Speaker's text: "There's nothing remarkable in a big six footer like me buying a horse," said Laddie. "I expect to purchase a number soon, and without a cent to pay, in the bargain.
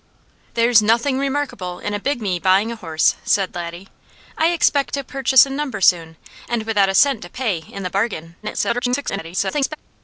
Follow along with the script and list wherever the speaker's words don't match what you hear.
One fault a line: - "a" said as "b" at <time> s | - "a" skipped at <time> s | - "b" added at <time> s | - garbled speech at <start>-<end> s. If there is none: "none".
- "six footer like" skipped at 2.2 s
- garbled speech at 8.4-9.8 s